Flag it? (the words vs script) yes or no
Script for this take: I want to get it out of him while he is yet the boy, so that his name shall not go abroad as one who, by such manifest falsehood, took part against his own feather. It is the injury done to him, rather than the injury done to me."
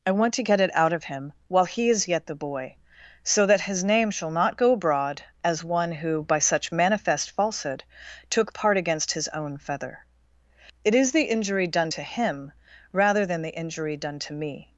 no